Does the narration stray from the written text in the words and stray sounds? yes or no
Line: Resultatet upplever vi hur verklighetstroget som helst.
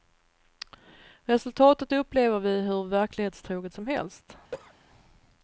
yes